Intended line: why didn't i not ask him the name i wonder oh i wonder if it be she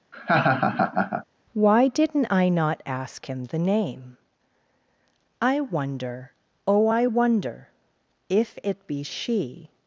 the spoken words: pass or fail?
pass